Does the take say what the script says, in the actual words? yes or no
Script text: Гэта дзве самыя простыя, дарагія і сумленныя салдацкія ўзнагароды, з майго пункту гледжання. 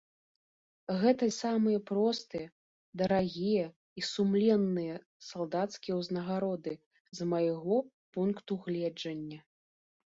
no